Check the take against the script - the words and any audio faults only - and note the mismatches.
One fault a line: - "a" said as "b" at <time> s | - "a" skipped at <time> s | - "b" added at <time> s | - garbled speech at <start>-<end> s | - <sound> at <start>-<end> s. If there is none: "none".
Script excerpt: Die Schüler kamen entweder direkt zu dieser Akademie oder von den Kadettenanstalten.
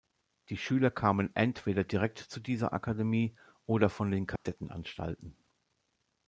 - dropout at 4.4-4.5 s